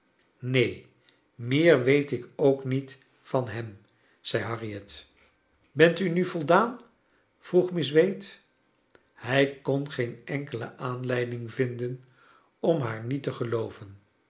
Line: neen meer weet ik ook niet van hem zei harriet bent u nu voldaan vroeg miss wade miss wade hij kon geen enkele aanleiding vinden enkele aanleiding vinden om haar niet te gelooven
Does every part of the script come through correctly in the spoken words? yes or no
no